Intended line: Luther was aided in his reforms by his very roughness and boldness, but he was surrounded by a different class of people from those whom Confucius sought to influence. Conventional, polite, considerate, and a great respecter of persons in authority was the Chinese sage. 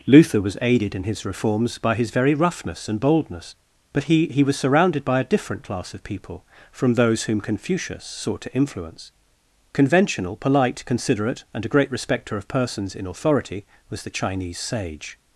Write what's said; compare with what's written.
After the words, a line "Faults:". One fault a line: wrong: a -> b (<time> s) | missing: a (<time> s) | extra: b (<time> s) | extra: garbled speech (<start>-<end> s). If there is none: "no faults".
Luther was aided in his reforms by his very roughness and boldness, but he he was surrounded by a different class of people from those whom Confucius sought to influence. Conventional, polite, considerate, and a great respecter of persons in authority was the Chinese sage.
Faults:
extra: he (4.3 s)